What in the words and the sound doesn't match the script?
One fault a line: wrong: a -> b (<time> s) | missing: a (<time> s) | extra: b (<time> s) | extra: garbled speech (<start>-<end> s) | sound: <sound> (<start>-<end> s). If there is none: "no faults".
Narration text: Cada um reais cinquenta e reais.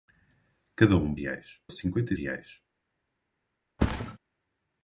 sound: thud (3.8-4.2 s)